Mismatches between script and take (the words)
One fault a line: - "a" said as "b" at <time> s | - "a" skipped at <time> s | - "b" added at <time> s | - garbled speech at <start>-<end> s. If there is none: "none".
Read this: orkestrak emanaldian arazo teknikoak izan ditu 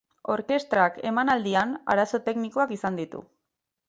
none